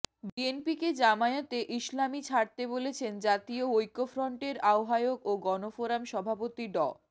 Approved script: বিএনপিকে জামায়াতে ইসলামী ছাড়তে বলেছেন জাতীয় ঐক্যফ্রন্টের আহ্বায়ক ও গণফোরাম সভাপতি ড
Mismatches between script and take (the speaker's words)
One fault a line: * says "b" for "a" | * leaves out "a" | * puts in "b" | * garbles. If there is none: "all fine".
all fine